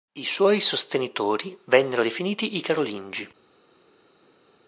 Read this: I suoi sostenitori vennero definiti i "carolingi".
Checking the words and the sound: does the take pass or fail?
pass